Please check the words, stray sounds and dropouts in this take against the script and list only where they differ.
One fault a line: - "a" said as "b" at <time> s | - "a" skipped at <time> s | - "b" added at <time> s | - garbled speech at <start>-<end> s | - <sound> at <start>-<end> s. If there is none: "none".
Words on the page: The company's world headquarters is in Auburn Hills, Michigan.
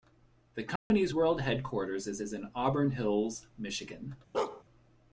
- dropout at 0.8-0.9 s
- "is" added at 2.2 s
- bark at 4.3-4.6 s